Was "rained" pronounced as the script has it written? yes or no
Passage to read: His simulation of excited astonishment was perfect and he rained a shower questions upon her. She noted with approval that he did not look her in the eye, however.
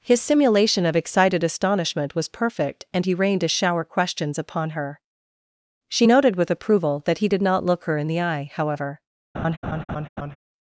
yes